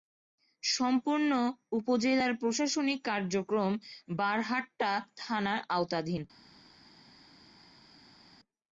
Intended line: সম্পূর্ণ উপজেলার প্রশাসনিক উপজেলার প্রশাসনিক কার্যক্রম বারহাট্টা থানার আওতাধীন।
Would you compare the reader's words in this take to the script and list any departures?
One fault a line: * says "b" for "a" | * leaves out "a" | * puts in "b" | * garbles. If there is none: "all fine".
* leaves out "উপজেলার প্রশাসনিক"